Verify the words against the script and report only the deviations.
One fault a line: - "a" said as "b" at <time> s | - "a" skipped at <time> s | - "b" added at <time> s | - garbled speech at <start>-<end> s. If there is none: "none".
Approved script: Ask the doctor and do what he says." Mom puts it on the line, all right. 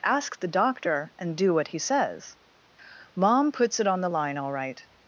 none